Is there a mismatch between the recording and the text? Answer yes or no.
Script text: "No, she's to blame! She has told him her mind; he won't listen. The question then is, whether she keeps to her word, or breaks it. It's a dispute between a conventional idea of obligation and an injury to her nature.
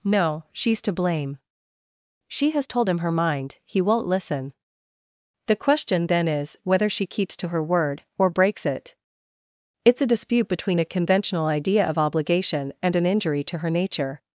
no